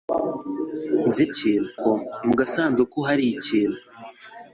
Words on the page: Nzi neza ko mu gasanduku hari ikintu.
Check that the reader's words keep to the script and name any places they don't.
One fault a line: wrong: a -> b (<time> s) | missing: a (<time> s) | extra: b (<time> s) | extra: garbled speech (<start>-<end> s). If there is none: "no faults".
wrong: neza -> ikintu (1.3 s)